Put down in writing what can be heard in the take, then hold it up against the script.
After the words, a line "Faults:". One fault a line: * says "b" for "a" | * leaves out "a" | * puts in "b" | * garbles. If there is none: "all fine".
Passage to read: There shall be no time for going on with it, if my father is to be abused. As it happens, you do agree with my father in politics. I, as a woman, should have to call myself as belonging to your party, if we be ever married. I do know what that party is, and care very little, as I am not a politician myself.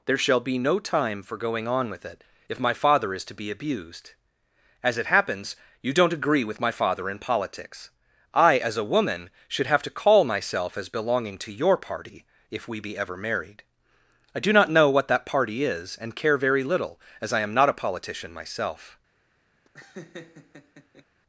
There shall be no time for going on with it, if my father is to be abused. As it happens, you don't agree with my father in politics. I, as a woman, should have to call myself as belonging to your party, if we be ever married. I do not know what that party is, and care very little, as I am not a politician myself.
Faults:
* says "don't" for "do"
* puts in "not"